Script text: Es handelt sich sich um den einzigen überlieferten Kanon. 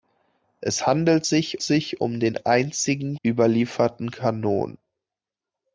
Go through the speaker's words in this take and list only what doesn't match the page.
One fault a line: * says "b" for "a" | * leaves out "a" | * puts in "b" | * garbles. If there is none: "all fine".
all fine